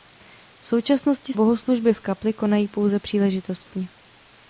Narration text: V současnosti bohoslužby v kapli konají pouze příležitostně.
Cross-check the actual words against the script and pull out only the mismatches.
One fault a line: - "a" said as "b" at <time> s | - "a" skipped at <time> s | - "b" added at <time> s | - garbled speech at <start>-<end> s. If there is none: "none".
none